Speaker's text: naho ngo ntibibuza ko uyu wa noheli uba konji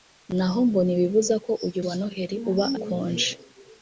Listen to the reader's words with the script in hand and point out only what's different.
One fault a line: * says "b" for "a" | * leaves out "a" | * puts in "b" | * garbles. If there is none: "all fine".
all fine